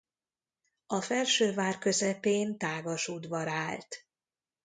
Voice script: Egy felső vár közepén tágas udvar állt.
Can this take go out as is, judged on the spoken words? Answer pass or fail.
fail